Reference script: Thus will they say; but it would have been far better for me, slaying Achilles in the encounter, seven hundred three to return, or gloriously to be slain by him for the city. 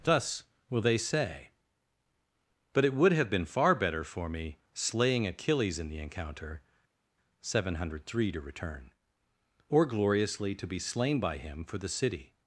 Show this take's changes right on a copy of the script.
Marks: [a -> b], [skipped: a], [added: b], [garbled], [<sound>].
Thus will they say; but it would have been far better for me, slaying Achilles in the encounter, seven hundred three to return, or gloriously to be slain by him for the city.